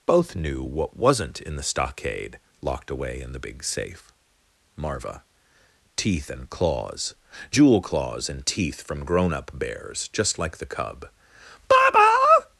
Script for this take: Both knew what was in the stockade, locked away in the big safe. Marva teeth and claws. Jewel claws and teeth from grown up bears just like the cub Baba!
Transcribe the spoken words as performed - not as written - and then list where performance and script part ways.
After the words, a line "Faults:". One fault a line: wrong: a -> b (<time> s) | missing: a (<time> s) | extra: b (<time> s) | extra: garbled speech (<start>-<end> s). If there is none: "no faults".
Both knew what wasn't in the stockade, locked away in the big safe. Marva teeth and claws. Jewel claws and teeth from grown up bears just like the cub Baba!
Faults:
wrong: was -> wasn't (1.0 s)